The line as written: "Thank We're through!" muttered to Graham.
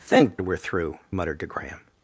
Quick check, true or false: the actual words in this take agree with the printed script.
true